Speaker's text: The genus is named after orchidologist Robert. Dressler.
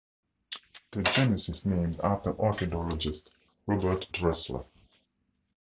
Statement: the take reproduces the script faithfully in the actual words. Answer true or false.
true